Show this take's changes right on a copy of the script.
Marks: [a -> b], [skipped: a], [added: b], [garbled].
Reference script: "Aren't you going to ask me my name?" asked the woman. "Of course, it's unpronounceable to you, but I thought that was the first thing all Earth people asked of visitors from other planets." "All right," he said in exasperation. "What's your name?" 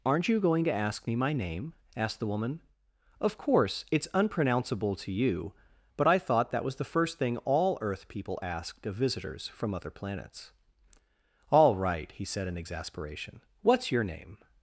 "Aren't you going to ask me my name?" asked the woman. "Of course, it's unpronounceable to you, but I thought that was the first thing all Earth people asked of visitors from other planets." "All right," he said in exasperation. "What's your name?"